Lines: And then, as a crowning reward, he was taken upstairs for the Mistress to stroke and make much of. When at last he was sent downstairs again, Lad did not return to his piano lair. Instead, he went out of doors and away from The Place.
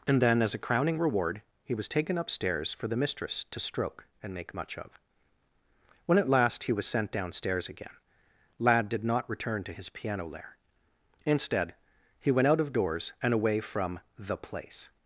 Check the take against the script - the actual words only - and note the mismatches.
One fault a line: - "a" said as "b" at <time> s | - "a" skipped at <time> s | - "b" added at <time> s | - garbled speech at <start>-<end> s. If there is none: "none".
none